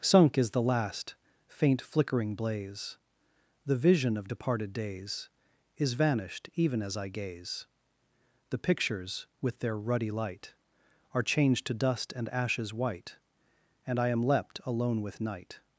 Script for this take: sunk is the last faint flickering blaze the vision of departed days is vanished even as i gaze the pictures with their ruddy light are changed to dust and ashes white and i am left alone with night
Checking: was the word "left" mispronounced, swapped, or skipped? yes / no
yes